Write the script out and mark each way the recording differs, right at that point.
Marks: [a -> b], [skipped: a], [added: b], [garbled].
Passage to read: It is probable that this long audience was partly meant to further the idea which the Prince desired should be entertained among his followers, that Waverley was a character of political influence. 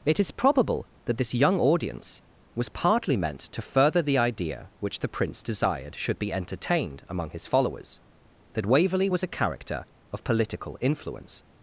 It is probable that this [long -> young] audience was partly meant to further the idea which the Prince desired should be entertained among his followers, that Waverley was a character of political influence.